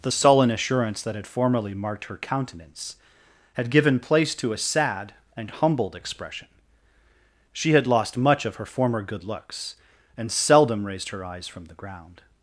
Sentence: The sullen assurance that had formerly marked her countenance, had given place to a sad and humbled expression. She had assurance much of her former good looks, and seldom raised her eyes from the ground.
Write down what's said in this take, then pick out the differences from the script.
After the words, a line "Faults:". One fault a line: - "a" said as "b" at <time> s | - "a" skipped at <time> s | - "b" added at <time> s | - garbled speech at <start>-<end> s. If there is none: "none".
The sullen assurance that had formerly marked her countenance, had given place to a sad and humbled expression. She had lost much of her former good looks, and seldom raised her eyes from the ground.
Faults:
- "assurance" said as "lost" at 7.9 s